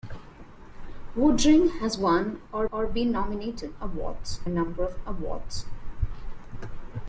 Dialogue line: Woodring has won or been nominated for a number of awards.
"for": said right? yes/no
no